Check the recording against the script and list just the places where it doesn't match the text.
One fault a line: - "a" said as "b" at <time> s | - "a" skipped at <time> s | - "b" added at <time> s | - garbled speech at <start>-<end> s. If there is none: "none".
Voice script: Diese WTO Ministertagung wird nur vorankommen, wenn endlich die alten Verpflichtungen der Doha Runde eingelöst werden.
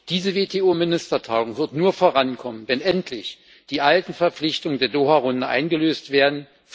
none